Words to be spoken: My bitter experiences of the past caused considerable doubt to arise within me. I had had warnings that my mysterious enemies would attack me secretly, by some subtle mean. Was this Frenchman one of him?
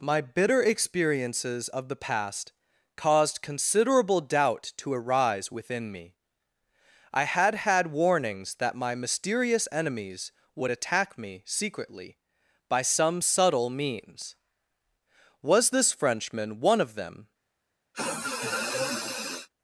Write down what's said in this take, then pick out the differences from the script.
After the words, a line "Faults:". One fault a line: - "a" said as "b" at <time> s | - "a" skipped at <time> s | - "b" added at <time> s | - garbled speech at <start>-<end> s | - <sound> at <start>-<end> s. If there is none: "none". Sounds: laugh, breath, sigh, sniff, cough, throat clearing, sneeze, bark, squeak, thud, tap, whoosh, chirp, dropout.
My bitter experiences of the past caused considerable doubt to arise within me. I had had warnings that my mysterious enemies would attack me secretly, by some subtle means. Was this Frenchman one of them?
Faults:
- "mean" said as "means" at 13.7 s
- "him" said as "them" at 16.9 s
- sniff at 17.9-19.5 s